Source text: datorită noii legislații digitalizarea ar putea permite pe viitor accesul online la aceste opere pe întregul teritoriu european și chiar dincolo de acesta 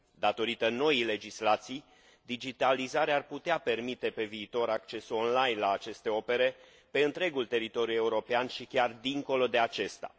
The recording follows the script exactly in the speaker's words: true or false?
true